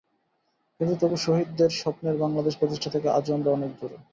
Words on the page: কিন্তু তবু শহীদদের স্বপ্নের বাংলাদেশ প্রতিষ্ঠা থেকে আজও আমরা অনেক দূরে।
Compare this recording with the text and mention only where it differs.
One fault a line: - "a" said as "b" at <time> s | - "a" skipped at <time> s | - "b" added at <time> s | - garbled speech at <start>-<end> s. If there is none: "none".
none